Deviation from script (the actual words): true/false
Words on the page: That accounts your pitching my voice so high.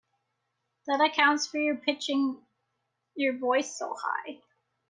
true